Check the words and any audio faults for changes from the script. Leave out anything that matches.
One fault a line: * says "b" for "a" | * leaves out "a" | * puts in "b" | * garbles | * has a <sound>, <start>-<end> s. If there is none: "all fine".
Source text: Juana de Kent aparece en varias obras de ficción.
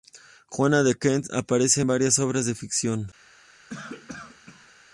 * has a cough, 3.7-4.7 s